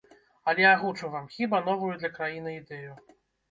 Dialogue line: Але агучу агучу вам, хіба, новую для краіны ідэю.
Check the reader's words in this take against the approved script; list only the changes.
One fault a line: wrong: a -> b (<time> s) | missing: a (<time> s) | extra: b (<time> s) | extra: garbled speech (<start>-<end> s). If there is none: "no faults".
missing: агучу (1.1 s)